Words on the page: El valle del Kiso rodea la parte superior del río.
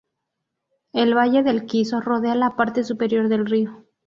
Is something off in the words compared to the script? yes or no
no